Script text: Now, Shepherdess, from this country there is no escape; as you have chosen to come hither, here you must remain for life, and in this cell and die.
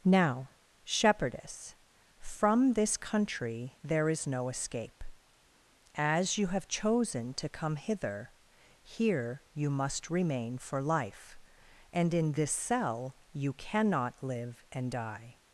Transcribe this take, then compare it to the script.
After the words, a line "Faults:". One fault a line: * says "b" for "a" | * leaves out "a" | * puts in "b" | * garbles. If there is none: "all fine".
Now, Shepherdess, from this country there is no escape; as you have chosen to come hither, here you must remain for life, and in this cell you cannot live and die.
Faults:
* puts in "you cannot live"